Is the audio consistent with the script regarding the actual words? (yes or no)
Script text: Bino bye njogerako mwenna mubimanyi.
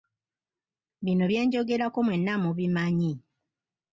yes